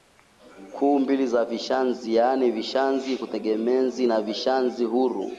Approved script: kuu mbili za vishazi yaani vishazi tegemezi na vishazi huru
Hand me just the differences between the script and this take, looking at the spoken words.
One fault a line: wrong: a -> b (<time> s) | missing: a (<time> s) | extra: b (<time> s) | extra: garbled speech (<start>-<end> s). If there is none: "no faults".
no faults